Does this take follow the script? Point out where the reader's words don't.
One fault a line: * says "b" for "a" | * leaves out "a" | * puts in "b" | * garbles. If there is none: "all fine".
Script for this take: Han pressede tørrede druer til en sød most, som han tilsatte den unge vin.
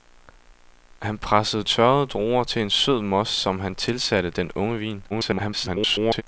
* garbles